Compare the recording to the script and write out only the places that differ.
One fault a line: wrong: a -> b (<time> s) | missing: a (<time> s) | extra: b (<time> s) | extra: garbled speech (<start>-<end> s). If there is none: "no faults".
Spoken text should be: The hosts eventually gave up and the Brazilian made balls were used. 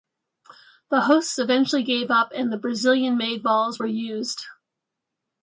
no faults